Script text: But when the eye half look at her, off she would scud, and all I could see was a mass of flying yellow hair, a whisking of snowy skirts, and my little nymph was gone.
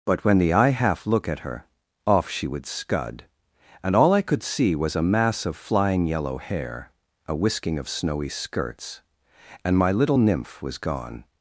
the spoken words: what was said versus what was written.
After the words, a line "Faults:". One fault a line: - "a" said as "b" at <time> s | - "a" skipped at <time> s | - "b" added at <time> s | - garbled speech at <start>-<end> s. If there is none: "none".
But when the eye half look at her, off she would scud, and all I could see was a mass of flying yellow hair, a whisking of snowy skirts, and my little nymph was gone.
Faults:
none